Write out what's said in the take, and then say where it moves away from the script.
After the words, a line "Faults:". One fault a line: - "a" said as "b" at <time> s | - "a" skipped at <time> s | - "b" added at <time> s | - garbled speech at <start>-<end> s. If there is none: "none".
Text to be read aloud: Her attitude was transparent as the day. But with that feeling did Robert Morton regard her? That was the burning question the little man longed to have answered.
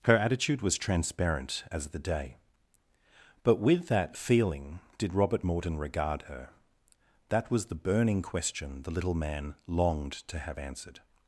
Her attitude was transparent as the day. But with that feeling did Robert Morton regard her? That was the burning question the little man longed to have answered.
Faults:
none